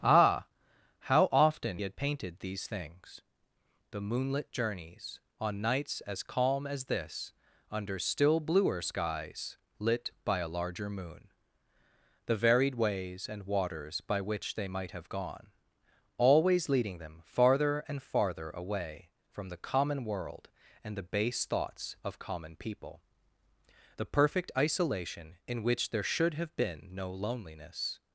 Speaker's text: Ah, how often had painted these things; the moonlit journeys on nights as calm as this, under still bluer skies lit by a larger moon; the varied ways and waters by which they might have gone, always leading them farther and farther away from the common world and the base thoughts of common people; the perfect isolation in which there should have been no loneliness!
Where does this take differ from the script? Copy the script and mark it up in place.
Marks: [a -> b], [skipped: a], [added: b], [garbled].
Ah, how often had painted these things; the moonlit journeys on nights as calm as this, under still bluer skies lit by a larger moon; the varied ways and waters by which they might have gone, always leading them farther and farther away from the common world and the base thoughts of common people; the perfect isolation in which there should have been no loneliness!